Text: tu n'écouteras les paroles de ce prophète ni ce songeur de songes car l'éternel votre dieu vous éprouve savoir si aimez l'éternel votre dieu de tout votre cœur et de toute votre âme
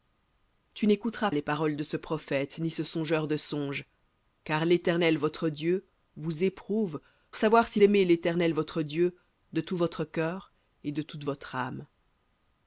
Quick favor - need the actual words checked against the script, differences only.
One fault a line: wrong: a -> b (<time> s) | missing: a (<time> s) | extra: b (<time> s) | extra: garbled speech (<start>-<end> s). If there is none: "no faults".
no faults